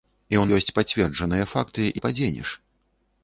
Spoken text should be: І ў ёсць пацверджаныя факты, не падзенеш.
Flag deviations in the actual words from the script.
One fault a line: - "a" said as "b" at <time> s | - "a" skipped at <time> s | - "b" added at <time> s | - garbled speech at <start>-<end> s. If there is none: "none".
none